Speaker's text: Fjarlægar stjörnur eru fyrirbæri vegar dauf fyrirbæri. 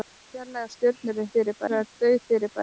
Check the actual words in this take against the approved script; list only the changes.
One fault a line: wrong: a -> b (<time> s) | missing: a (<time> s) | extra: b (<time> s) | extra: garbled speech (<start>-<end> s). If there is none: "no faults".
no faults